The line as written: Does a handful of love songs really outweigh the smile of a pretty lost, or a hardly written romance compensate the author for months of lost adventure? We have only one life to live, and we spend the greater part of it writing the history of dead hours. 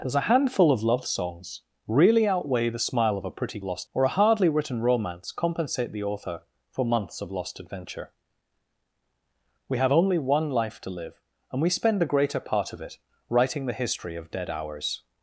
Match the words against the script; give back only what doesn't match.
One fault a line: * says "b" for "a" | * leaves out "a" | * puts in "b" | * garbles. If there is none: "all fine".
all fine